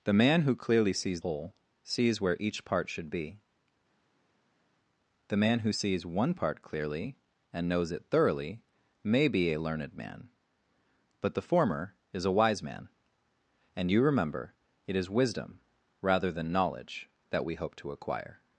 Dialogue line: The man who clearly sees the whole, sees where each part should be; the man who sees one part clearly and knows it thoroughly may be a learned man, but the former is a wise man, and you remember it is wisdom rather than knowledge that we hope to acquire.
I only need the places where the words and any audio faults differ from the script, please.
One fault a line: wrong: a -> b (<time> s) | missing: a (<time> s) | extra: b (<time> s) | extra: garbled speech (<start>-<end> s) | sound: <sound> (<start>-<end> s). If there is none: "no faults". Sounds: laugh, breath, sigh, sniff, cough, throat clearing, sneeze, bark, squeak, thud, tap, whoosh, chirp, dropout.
missing: the (1.2 s)